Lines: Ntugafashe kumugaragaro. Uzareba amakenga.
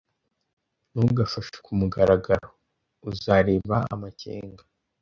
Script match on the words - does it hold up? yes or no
yes